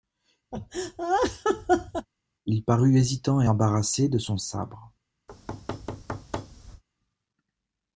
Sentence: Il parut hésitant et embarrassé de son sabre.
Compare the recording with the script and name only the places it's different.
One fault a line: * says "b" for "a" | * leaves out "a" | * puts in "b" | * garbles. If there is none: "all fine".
all fine